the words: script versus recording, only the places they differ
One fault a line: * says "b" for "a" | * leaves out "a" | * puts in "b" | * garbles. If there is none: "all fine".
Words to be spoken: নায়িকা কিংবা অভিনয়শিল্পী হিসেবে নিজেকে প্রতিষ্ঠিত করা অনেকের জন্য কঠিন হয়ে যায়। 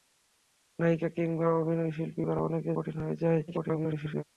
* leaves out "হিসেবে নিজেকে প্রতিষ্ঠিত"
* leaves out "জন্য"
* garbles